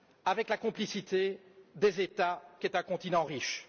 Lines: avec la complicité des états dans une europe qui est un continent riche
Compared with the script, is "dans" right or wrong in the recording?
wrong